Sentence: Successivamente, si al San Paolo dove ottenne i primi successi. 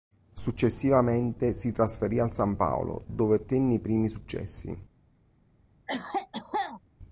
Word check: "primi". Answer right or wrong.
right